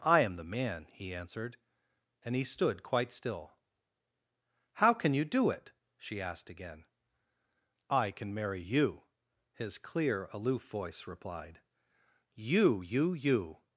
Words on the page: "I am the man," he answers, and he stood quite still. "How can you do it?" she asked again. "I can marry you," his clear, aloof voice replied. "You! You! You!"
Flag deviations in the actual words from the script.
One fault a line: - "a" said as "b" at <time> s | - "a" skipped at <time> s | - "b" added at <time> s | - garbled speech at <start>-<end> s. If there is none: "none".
- "answers" said as "answered" at 1.1 s